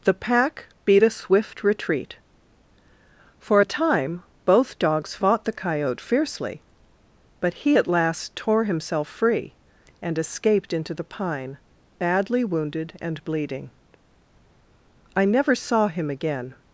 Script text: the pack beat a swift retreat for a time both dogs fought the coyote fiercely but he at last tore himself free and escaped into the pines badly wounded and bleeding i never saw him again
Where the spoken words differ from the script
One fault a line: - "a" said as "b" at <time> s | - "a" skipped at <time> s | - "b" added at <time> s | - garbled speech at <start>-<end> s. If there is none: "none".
- "pines" said as "pine" at 11.0 s